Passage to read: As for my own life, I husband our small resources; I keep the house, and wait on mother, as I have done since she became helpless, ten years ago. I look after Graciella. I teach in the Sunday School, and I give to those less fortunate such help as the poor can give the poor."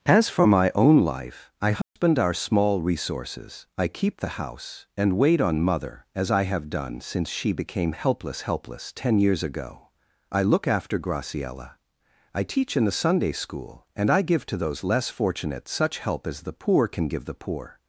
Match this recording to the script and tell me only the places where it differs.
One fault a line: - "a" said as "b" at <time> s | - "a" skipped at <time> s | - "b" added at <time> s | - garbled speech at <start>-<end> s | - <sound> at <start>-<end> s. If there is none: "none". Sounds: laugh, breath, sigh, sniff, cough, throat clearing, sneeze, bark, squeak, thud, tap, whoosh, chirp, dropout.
- dropout at 1.8-2.0 s
- "helpless" added at 8.4 s